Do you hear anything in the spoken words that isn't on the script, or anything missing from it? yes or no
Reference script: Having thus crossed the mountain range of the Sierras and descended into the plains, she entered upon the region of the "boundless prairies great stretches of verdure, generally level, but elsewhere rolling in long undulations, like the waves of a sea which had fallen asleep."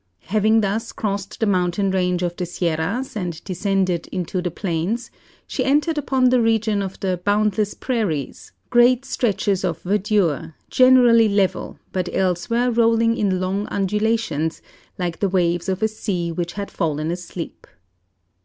no